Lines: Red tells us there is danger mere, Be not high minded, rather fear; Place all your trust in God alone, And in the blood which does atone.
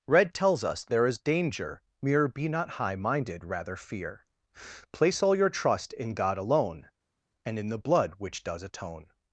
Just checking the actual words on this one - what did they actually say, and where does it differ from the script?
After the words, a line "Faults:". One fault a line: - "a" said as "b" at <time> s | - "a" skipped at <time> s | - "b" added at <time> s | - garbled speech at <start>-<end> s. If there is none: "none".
Red tells us there is danger mere, Be not high minded, rather fear; Place all your trust in God alone, And in the blood which does atone.
Faults:
none